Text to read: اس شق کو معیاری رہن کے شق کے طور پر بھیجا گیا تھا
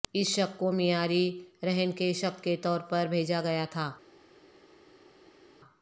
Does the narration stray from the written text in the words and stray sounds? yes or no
no